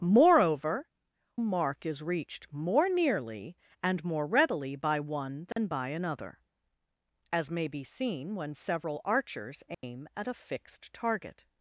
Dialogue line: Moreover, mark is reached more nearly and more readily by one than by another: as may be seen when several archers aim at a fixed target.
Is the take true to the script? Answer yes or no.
yes